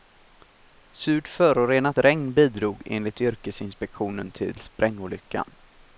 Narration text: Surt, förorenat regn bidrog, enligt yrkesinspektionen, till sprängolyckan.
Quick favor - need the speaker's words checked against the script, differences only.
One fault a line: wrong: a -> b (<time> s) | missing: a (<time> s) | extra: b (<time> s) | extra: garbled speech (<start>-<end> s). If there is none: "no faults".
no faults